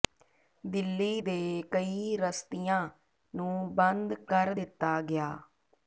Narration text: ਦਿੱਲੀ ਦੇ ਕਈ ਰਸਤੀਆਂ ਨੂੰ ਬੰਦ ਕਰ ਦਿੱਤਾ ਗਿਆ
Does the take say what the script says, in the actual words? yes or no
yes